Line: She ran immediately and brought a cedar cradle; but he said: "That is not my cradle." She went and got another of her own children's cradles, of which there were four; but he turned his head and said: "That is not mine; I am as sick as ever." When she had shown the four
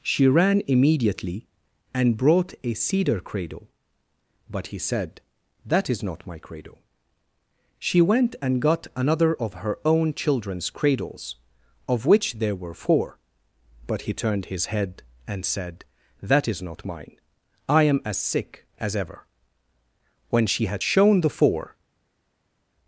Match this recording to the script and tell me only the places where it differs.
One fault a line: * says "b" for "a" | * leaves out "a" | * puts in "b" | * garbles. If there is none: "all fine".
all fine